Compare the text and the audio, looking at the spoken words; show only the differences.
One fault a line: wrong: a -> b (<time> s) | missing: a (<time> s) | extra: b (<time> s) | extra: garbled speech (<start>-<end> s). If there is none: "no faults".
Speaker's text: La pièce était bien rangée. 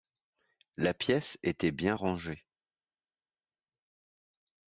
no faults